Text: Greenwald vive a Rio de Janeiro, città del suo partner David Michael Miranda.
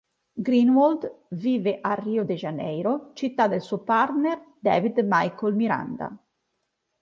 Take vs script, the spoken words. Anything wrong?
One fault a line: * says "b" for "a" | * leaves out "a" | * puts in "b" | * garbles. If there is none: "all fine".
all fine